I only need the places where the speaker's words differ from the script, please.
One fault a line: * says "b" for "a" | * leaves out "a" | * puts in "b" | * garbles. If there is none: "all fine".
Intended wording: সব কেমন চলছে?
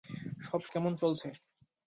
all fine